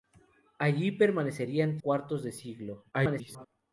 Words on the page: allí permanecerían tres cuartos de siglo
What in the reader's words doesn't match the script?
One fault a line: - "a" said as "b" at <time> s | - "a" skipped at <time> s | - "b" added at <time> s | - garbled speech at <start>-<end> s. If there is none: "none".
- "tres" skipped at 1.8 s
- garbled speech at 2.9-3.5 s